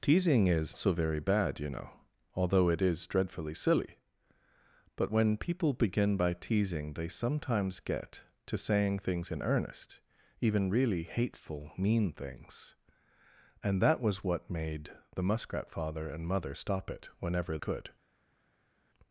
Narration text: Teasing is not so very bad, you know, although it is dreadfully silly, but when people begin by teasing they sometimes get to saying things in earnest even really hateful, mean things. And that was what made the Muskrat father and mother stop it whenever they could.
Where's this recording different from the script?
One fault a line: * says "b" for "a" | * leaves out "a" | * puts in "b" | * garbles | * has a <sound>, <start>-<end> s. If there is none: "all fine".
* leaves out "not"
* leaves out "they"